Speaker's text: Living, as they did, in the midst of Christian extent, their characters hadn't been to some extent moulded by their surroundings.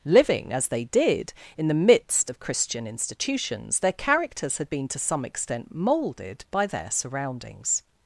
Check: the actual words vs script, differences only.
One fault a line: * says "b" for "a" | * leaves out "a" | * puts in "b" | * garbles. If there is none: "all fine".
* says "institutions" for "extent"
* says "had" for "hadn't"